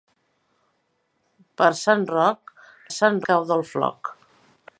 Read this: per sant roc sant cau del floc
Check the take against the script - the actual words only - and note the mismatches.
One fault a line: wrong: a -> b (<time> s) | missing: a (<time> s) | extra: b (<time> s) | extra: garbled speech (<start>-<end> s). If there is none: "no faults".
no faults